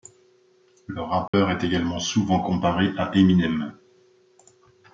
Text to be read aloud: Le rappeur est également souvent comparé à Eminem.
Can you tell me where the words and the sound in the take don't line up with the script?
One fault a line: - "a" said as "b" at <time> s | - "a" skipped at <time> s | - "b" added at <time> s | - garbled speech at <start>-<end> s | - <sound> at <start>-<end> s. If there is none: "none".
- dropout at 1.3-1.3 s